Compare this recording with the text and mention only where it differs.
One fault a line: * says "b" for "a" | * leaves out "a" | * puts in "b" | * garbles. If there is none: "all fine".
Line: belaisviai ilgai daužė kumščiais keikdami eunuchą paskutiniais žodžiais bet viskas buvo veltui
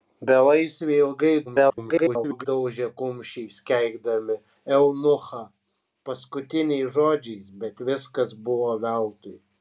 * garbles